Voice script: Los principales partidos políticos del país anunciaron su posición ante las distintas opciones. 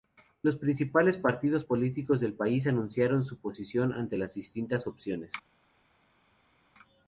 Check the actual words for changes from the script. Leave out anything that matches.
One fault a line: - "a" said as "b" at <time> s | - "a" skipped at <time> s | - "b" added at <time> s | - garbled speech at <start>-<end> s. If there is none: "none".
none